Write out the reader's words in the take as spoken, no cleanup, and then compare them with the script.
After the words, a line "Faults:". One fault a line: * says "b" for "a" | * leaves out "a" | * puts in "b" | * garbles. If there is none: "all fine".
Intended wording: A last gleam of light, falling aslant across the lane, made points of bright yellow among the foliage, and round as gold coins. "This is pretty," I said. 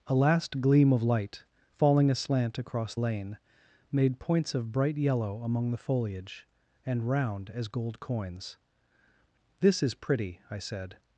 A last gleam of light, falling aslant across lane, made points of bright yellow among the foliage, and round as gold coins. "This is pretty," I said.
Faults:
* leaves out "the"